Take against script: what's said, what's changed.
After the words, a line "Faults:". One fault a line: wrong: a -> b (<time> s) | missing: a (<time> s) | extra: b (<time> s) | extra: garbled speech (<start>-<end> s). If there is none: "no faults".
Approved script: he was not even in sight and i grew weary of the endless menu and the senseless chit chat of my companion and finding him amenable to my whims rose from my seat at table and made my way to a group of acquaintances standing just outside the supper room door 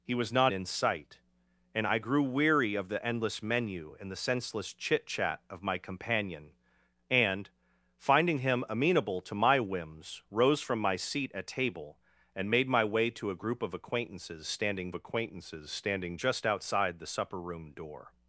he was not in sight and i grew weary of the endless menu and the senseless chit chat of my companion and finding him amenable to my whims rose from my seat at table and made my way to a group of acquaintances standing acquaintances standing just outside the supper room door
Faults:
missing: even (0.5 s)
extra: acquaintances standing (14.9 s)